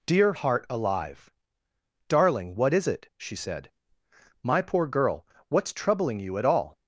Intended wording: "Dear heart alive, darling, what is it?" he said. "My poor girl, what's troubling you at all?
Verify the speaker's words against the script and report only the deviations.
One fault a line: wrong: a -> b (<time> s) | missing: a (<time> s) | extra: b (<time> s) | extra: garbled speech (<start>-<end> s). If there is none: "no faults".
wrong: he -> she (3.2 s)